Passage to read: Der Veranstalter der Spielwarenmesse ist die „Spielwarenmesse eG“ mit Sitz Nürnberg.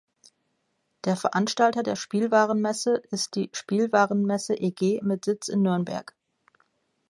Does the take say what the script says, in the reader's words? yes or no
no